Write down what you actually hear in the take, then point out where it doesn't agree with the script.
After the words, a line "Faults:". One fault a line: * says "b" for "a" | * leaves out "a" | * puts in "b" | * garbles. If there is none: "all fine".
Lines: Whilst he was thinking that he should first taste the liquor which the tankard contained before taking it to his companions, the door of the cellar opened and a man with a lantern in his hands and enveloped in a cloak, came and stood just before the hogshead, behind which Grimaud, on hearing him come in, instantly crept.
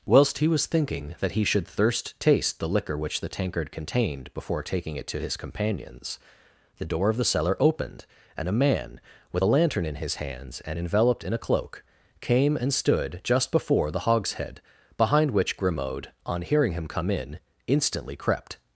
Whilst he was thinking that he should thirst taste the liquor which the tankard contained before taking it to his companions, the door of the cellar opened and a man with a lantern in his hands and enveloped in a cloak, came and stood just before the hogshead, behind which Grimaud, on hearing him come in, instantly crept.
Faults:
* says "thirst" for "first"